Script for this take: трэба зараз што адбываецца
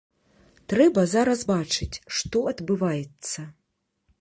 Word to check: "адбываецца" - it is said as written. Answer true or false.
true